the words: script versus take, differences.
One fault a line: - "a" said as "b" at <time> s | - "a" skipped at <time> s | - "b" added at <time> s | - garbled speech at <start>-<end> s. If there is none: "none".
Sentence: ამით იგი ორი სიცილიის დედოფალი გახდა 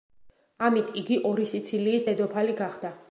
none